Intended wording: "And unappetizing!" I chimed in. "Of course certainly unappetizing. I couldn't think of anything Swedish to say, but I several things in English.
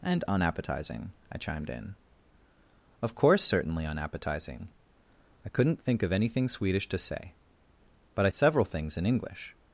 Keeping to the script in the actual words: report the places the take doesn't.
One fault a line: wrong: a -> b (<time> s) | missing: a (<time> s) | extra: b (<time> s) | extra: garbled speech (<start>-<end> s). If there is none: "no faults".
no faults